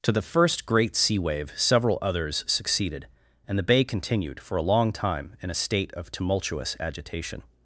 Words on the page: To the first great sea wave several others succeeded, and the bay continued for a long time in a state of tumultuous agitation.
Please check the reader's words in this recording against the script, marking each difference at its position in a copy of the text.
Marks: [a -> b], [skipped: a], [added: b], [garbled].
To the first great sea wave several others succeeded, and the bay continued for a long time in a state of tumultuous agitation.